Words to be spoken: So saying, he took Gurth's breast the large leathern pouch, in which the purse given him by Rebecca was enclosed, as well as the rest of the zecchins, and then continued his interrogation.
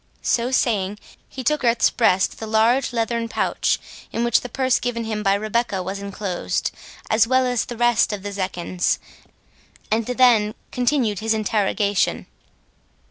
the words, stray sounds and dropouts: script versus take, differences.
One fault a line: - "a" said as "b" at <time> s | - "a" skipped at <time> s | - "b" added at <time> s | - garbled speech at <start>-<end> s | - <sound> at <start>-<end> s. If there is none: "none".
none